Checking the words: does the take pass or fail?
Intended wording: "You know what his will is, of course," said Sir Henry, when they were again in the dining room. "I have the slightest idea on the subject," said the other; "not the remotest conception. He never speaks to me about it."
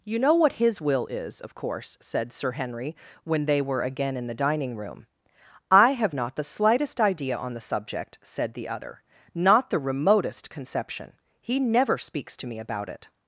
fail